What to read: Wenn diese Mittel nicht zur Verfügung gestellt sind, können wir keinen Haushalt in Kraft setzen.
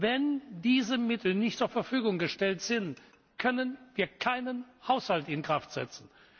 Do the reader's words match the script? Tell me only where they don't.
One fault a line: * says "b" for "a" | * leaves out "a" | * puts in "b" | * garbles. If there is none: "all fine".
all fine